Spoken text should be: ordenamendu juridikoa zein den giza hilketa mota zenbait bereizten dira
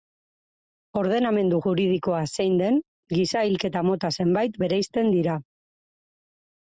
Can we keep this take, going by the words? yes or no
yes